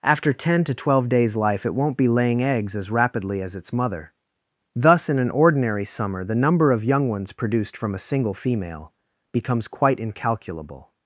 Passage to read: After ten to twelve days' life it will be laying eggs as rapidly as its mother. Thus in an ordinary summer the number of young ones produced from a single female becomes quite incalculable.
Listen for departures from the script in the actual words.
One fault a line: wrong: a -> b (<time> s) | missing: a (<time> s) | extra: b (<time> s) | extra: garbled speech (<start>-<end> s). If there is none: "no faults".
wrong: will -> won't (1.8 s)